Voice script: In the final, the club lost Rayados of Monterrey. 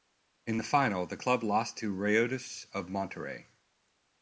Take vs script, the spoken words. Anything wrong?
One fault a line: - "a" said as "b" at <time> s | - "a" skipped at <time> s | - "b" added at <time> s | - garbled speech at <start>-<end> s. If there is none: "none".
- "to" added at 1.8 s